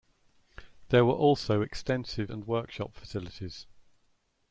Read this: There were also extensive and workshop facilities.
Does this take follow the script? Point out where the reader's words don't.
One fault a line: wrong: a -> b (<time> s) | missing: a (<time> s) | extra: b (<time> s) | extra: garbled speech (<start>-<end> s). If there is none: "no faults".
no faults